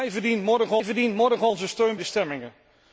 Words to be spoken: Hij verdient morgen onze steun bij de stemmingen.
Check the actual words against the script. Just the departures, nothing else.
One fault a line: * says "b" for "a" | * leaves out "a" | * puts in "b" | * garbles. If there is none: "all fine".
* puts in "hij verdient morgen"
* leaves out "bij"